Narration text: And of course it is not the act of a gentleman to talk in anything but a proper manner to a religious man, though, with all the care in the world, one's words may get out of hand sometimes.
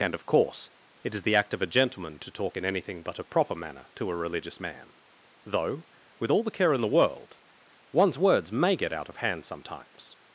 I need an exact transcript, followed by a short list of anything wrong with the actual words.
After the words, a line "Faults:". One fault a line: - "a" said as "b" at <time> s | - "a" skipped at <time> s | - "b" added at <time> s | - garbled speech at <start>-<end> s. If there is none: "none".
And of course it is the act of a gentleman to talk in anything but a proper manner to a religious man, though, with all the care in the world, one's words may get out of hand sometimes.
Faults:
- "not" skipped at 1.2 s